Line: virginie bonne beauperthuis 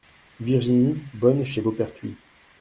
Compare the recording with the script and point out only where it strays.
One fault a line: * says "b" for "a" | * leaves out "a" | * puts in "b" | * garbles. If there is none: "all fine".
* puts in "chez"